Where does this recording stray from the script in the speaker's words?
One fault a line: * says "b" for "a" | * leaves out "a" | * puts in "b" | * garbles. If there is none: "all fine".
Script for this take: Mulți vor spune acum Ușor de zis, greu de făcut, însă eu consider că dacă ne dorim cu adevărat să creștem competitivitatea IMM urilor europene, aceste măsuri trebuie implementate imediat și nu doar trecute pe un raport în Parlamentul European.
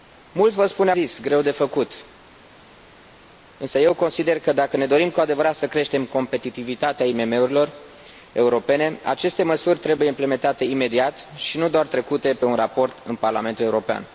* leaves out "acum Ușor de"